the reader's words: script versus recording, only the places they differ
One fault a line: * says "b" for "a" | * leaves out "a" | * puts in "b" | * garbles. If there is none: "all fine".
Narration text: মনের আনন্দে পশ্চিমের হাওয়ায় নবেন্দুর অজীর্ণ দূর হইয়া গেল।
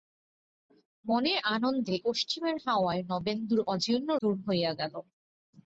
all fine